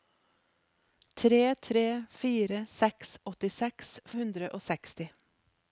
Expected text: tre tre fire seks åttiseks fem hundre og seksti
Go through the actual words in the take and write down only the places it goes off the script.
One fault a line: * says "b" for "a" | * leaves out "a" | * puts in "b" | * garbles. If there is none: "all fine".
* leaves out "fem"